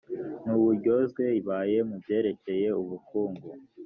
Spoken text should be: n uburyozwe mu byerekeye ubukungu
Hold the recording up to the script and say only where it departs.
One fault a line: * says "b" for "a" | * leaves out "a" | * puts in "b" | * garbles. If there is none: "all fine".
* puts in "ibaye"